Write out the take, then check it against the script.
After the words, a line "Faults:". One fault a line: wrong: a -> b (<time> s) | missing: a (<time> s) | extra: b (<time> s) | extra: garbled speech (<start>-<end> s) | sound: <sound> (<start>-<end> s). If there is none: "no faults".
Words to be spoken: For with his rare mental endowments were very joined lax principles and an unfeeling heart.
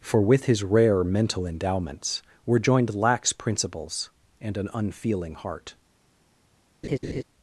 For with his rare mental endowments were joined lax principles and an unfeeling heart.
Faults:
missing: very (2.6 s)
sound: laugh (6.8-7.2 s)